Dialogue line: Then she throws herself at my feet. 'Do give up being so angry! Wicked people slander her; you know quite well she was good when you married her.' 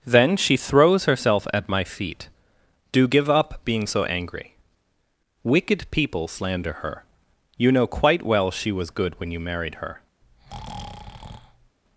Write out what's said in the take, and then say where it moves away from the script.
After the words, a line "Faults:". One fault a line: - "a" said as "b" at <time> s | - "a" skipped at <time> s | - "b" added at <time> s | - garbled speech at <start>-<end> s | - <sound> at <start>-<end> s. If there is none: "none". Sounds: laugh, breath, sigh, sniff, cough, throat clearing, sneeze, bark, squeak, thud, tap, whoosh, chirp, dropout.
Then she throws herself at my feet. 'Do give up being so angry! Wicked people slander her; you know quite well she was good when you married her.'
Faults:
- breath at 10.2-11.8 s